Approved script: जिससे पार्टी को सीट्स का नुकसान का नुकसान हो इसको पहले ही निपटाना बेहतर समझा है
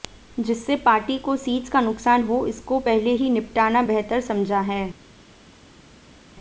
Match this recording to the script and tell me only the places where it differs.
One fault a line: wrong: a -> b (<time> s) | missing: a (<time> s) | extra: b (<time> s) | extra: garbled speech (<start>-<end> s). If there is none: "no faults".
missing: का नुकसान (2.2 s)